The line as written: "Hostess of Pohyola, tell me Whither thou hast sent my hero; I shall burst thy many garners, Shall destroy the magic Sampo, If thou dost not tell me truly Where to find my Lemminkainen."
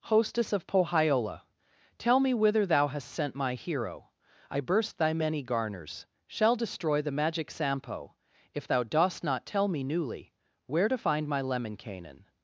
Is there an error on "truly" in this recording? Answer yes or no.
yes